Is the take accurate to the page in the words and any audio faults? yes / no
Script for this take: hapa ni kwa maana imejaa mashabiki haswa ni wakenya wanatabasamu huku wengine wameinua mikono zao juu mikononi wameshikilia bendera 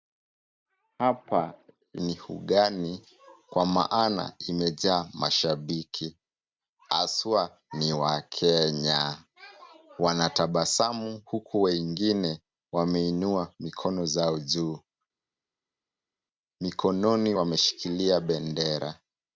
no